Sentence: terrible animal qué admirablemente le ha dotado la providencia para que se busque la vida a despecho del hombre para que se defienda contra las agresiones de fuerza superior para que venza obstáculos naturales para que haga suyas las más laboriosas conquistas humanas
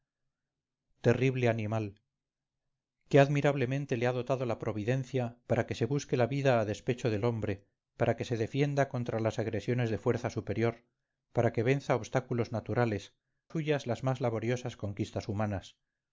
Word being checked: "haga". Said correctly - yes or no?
no